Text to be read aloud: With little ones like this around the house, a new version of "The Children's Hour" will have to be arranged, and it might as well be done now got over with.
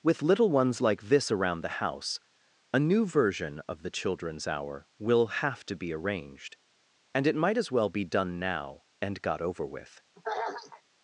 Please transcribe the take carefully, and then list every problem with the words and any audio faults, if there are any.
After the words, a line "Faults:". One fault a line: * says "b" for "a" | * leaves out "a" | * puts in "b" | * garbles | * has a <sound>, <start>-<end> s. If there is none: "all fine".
With little ones like this around the house, a new version of "The Children's Hour" will have to be arranged, and it might as well be done now and got over with.
Faults:
* puts in "and"
* has a throat clearing, 10.2-10.8 s